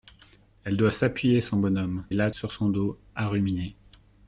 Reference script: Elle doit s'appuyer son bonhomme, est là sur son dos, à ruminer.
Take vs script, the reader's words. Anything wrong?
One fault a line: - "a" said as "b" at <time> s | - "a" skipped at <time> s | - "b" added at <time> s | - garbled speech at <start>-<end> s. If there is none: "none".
none